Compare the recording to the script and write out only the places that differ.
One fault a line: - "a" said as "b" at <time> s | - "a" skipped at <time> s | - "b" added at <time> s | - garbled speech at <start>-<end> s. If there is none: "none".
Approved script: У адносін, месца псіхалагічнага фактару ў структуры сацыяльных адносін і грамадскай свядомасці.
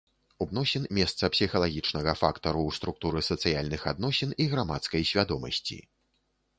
none